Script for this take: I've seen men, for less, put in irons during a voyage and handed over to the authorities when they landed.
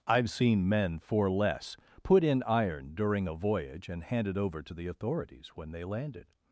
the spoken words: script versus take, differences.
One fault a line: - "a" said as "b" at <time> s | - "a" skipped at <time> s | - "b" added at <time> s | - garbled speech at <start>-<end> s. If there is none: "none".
- "irons" said as "iron" at 2.4 s